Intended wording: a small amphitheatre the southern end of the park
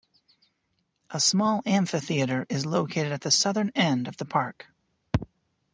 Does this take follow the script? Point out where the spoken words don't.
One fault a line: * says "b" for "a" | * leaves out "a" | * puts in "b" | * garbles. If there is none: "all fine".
* puts in "is located at"